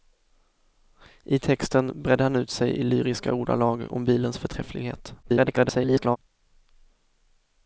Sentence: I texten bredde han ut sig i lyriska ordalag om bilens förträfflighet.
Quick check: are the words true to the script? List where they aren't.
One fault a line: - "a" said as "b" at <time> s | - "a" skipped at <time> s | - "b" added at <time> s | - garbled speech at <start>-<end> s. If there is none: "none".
- garbled speech at 5.2-6.2 s